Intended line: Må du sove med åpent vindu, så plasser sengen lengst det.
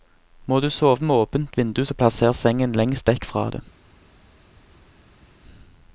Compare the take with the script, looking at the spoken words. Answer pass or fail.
fail